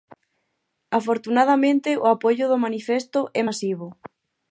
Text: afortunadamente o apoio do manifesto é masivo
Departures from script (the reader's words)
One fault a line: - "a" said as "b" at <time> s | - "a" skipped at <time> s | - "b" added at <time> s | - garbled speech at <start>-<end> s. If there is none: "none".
none